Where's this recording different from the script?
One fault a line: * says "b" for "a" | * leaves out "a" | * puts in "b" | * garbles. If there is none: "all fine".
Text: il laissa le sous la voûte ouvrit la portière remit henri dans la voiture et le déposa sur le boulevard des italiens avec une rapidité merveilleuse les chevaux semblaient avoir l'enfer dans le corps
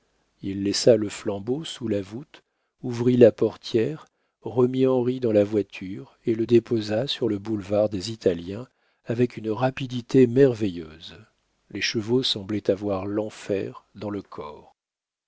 * puts in "flambeau"